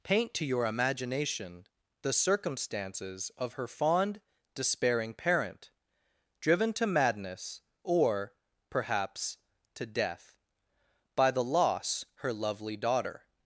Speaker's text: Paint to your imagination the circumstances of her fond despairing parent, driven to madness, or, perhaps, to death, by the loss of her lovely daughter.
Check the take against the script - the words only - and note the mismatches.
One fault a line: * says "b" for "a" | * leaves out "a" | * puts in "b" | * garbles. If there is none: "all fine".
* leaves out "of"